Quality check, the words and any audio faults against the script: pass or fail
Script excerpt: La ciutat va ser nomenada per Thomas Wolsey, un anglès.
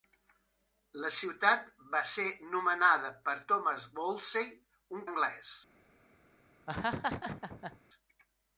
fail